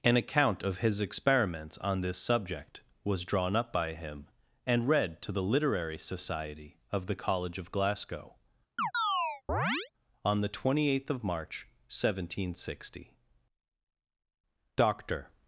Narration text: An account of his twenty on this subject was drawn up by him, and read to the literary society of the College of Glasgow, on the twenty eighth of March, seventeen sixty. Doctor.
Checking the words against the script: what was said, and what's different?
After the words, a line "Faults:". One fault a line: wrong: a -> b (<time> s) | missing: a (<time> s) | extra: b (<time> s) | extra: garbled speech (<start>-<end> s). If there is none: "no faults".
An account of his experiments on this subject was drawn up by him, and read to the literary society of the College of Glasgow, on the twenty eighth of March, seventeen sixty. Doctor.
Faults:
wrong: twenty -> experiments (1.0 s)